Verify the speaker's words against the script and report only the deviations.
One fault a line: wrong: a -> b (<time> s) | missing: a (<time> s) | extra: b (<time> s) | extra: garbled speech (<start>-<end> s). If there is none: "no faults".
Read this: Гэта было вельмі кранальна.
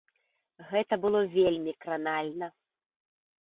no faults